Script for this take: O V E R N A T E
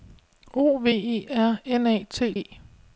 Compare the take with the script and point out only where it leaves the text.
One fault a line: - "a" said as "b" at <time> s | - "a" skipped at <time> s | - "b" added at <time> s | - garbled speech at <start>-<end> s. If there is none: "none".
none